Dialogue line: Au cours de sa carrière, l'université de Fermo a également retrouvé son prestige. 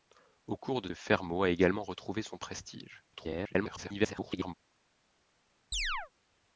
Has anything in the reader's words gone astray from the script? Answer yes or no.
yes